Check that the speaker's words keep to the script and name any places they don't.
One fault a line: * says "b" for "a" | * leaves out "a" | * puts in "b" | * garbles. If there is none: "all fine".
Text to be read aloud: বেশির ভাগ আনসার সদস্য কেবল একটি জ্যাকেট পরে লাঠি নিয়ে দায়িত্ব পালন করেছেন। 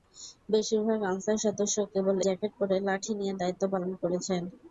* leaves out "একটি"